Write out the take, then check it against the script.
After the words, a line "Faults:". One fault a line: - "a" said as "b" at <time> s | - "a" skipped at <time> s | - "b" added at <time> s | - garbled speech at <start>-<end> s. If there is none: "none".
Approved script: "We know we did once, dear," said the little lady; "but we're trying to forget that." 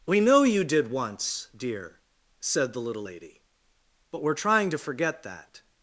"We know you did once, dear," said the little lady; "but we're trying to forget that."
Faults:
- "we" said as "you" at 0.4 s